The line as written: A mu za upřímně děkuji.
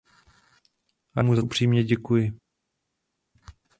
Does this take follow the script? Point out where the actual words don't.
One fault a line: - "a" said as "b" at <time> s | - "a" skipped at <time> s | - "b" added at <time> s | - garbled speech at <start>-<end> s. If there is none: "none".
none